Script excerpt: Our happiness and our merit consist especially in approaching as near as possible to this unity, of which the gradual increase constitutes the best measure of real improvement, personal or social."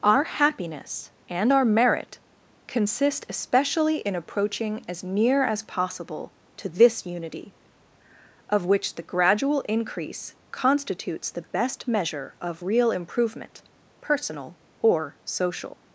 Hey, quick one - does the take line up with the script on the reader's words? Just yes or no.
yes